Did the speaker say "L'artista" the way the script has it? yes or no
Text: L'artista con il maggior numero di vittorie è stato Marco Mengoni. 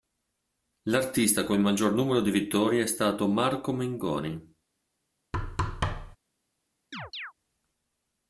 yes